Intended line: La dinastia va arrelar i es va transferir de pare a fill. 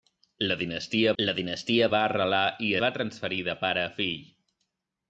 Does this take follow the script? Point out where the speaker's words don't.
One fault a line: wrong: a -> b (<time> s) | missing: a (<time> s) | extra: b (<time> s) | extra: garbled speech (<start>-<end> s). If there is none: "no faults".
extra: la dinastia (1.2 s)
missing: es (2.7 s)